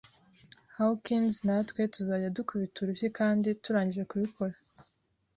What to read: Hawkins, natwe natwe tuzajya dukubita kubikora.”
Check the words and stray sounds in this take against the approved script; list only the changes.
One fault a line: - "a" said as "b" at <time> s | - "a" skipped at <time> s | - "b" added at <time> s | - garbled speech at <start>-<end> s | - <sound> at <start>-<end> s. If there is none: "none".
- "natwe" skipped at 1.8 s
- "urushyi kandi turangije" added at 2.8 s